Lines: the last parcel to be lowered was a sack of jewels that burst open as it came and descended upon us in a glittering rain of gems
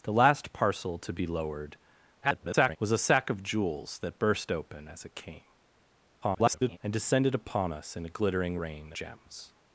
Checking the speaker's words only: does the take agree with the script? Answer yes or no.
no